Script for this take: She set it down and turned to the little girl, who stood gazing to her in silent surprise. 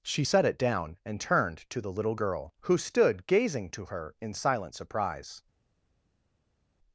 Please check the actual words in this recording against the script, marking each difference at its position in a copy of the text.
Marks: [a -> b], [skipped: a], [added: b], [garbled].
She set it down and turned to the little girl, who stood gazing to her in silent surprise.